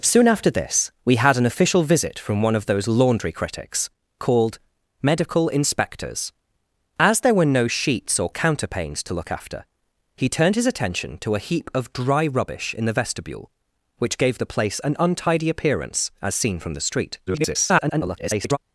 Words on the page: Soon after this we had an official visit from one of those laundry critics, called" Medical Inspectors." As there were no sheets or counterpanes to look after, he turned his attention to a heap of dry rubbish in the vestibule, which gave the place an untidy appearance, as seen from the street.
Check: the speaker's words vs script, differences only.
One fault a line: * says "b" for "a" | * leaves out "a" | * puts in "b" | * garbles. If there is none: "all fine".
* garbles